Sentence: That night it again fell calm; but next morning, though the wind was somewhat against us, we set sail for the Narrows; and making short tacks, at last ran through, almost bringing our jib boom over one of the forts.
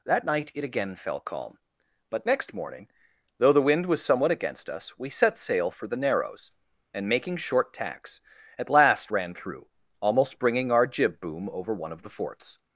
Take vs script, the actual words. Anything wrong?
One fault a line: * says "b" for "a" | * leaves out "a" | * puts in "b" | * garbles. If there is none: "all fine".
all fine